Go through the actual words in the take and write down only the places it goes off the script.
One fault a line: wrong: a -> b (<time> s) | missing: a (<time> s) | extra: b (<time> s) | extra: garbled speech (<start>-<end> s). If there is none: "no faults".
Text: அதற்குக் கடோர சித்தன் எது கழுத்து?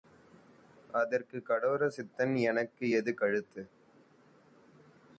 extra: எனக்கு (2.4 s)